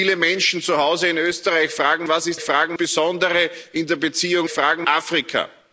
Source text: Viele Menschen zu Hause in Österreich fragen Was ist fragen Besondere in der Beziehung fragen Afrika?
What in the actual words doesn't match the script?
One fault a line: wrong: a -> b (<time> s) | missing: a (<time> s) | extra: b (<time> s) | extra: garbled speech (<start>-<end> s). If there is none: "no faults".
no faults